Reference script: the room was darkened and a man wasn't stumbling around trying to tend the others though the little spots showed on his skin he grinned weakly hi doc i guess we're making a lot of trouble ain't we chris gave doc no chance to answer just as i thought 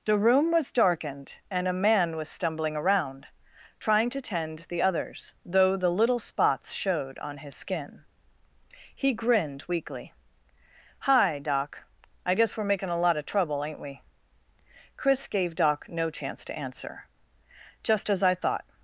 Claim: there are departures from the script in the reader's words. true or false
true